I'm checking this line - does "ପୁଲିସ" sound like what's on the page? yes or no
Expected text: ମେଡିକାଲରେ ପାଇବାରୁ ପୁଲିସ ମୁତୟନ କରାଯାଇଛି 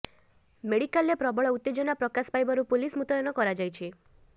yes